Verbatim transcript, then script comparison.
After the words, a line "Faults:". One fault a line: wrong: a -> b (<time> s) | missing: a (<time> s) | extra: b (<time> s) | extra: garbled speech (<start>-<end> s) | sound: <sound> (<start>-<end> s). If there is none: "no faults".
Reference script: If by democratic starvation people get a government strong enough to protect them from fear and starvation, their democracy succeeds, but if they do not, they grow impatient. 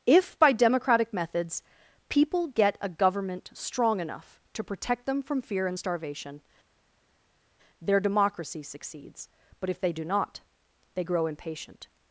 If by democratic methods people get a government strong enough to protect them from fear and starvation, their democracy succeeds, but if they do not, they grow impatient.
Faults:
wrong: starvation -> methods (1.1 s)